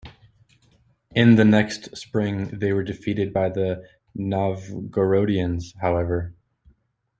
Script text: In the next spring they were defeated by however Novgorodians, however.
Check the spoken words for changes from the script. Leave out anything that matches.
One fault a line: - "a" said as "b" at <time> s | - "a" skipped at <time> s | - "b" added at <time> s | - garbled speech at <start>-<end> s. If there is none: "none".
- "however" said as "the" at 3.5 s